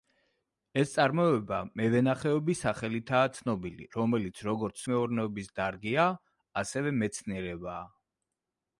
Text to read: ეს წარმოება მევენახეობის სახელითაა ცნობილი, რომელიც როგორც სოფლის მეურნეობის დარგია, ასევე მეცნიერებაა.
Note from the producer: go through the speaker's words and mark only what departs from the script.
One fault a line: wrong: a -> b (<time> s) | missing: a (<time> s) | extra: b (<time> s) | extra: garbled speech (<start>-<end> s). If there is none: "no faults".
missing: სოფლის (4.9 s)